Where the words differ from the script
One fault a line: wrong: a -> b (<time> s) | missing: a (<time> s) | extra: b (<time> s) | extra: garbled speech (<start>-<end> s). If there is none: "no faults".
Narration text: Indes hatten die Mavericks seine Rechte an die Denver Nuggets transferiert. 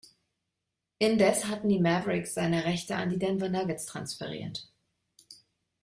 no faults